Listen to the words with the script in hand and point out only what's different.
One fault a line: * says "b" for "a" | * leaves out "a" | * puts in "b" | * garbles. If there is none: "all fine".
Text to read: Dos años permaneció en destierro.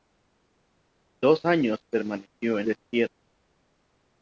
all fine